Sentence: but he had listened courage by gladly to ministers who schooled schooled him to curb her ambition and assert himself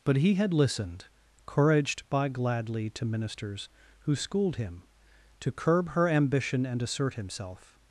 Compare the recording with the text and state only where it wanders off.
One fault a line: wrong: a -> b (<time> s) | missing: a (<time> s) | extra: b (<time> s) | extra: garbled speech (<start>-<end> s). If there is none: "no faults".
wrong: courage -> couraged (1.4 s)
missing: schooled (4.5 s)